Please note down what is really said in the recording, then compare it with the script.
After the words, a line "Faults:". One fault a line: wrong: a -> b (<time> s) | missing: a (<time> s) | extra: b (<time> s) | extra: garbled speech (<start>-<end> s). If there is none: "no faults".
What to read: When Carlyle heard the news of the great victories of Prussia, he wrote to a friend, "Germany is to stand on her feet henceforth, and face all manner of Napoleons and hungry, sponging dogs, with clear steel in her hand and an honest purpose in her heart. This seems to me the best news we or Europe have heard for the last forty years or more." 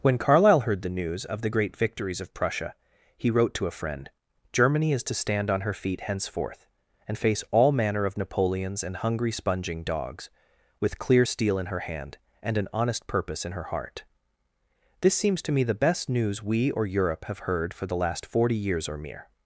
When Carlyle heard the news of the great victories of Prussia, he wrote to a friend, "Germany is to stand on her feet henceforth, and face all manner of Napoleons and hungry, sponging dogs, with clear steel in her hand and an honest purpose in her heart. This seems to me the best news we or Europe have heard for the last forty years or mere."
Faults:
wrong: more -> mere (19.0 s)